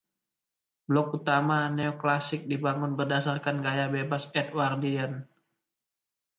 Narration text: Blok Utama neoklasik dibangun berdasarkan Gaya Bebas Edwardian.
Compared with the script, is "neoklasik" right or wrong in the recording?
right